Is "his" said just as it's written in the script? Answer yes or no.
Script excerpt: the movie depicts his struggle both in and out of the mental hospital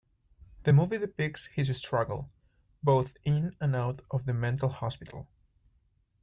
yes